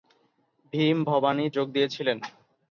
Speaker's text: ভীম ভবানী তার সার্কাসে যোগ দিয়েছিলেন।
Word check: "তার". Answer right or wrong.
wrong